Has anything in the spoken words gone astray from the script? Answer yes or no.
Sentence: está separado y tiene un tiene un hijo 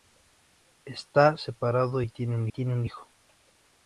no